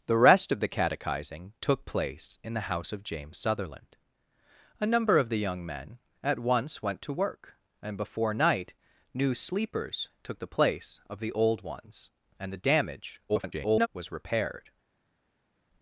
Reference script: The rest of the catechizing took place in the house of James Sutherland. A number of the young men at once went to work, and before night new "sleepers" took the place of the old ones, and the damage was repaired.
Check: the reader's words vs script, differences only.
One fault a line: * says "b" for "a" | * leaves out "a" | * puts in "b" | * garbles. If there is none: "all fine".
* garbles